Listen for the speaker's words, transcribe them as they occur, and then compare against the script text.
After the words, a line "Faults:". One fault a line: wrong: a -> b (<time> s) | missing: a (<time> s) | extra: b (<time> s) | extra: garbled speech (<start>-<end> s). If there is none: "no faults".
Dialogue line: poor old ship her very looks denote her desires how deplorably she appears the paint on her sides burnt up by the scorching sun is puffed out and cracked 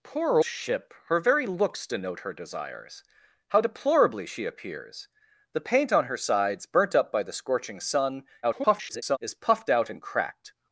poor ship her very looks denote her desires how deplorably she appears the paint on her sides burnt up by the scorching sun [garbled] is puffed out and cracked
Faults:
missing: old (0.4 s)
extra: garbled speech (8.4-9.2 s)